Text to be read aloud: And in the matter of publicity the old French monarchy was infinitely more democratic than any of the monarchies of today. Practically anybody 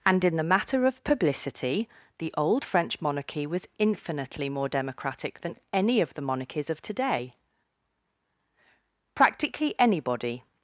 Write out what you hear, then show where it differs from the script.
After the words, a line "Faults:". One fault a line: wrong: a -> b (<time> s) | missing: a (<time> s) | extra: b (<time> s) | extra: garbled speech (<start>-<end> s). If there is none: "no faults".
And in the matter of publicity the old French monarchy was infinitely more democratic than any of the monarchies of today. Practically anybody
Faults:
no faults